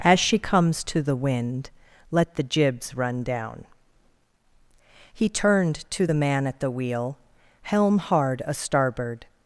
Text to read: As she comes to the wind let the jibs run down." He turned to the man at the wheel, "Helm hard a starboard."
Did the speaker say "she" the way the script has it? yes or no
yes